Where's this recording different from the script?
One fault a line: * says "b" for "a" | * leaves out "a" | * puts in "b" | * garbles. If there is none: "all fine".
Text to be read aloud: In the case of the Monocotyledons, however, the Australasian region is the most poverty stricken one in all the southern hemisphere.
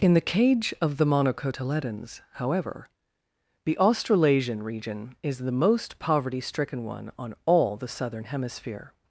* says "cage" for "case"
* says "on" for "in"